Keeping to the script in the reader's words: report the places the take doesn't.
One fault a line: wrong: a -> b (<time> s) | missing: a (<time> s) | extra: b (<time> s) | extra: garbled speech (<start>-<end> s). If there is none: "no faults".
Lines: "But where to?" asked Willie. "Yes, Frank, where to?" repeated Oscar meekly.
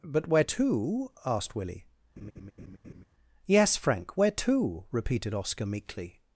no faults